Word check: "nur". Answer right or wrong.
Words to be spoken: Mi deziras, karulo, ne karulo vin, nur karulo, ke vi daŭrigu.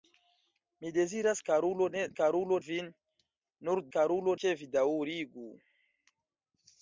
right